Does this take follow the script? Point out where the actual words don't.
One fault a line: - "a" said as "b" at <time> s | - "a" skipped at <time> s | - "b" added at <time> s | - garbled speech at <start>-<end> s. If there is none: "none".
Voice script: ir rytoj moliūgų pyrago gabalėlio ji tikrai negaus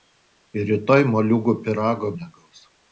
- "gabalėlio ji tikrai" skipped at 2.1 s